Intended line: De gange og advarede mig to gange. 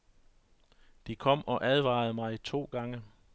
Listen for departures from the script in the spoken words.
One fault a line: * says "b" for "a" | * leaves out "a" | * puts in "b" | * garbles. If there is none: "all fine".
* says "kom" for "gange"